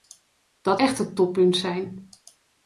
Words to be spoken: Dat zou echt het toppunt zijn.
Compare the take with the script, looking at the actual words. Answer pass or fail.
fail